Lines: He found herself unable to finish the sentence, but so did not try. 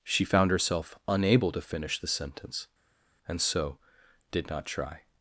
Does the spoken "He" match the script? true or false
false